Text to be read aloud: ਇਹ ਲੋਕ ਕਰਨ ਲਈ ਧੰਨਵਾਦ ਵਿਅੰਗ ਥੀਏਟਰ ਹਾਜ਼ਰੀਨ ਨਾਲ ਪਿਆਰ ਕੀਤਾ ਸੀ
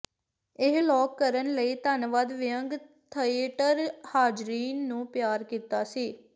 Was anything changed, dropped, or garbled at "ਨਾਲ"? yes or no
yes